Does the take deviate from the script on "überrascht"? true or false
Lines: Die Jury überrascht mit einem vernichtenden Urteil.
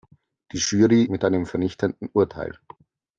true